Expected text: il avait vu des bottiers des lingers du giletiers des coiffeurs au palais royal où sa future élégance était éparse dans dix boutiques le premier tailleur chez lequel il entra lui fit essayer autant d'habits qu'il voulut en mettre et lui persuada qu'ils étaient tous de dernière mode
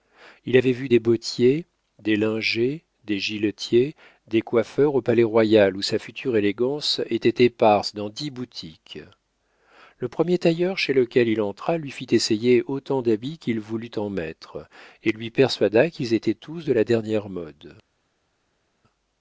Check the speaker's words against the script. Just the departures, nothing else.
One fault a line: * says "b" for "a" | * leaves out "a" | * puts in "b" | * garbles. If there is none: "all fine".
* says "des" for "du"
* puts in "la"